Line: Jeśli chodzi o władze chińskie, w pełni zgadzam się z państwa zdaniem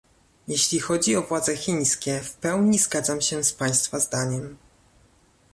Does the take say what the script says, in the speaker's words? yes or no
yes